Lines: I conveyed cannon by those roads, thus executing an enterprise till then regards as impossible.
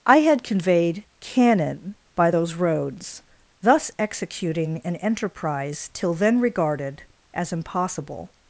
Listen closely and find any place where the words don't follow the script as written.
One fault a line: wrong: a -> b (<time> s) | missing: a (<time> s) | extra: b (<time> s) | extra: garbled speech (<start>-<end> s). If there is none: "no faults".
extra: had (0.2 s)
wrong: regards -> regarded (6.4 s)